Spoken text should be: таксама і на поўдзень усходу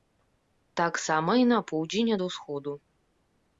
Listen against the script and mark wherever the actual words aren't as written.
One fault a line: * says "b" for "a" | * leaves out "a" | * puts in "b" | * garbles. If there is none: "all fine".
* puts in "ад"